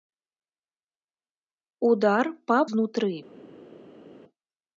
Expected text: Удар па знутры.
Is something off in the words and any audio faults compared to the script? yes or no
no